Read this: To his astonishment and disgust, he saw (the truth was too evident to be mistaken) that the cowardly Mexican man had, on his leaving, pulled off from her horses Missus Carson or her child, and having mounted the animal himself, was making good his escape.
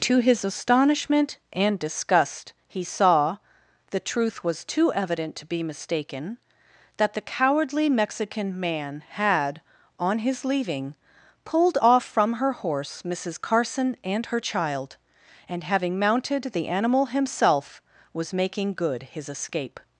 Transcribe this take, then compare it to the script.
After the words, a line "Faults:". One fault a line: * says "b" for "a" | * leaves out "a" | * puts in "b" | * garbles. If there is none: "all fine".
To his astonishment and disgust, he saw (the truth was too evident to be mistaken) that the cowardly Mexican man had, on his leaving, pulled off from her horse Missus Carson and her child, and having mounted the animal himself, was making good his escape.
Faults:
* says "horse" for "horses"
* says "and" for "or"